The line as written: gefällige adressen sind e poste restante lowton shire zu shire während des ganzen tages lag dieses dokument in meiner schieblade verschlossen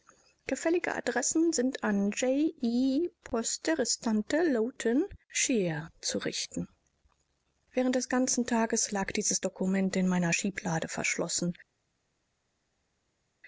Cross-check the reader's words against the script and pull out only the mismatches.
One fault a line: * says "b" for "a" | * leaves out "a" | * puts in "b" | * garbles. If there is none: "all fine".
* puts in "an j"
* says "richten" for "shire"